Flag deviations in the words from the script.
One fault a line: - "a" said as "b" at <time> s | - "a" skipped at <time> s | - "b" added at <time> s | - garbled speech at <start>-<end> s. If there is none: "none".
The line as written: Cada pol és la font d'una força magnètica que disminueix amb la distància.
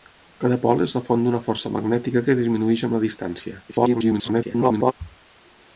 - garbled speech at 3.7-4.9 s